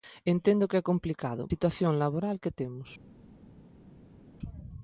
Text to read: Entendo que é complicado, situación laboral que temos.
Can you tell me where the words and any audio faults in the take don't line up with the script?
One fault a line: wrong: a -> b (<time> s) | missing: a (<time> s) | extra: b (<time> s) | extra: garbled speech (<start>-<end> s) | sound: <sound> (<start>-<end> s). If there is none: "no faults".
no faults